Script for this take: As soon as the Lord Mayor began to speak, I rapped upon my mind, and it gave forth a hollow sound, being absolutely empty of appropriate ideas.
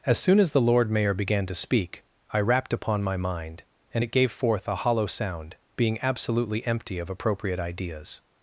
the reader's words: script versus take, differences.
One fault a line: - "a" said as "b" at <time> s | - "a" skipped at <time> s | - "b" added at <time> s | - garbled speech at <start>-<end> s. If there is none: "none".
none